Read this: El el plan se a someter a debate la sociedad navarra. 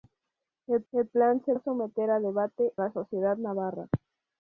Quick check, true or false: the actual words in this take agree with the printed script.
true